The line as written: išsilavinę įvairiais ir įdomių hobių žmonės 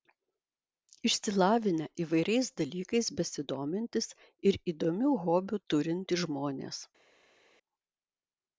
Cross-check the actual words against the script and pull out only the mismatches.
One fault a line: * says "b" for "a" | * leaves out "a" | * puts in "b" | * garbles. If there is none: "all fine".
* puts in "dalykais besidomintys"
* puts in "turintys"